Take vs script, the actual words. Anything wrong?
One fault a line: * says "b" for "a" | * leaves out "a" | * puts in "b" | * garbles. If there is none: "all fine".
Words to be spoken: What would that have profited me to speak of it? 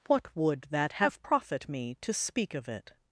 * says "profit" for "profited"